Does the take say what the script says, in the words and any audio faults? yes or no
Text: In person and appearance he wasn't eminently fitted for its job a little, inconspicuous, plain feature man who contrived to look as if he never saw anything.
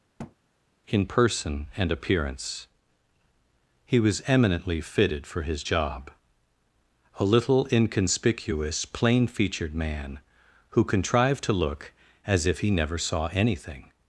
no